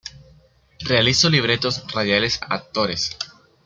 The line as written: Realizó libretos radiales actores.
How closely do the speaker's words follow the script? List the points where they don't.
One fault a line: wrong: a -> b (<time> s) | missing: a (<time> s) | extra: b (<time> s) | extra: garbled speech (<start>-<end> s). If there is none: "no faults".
no faults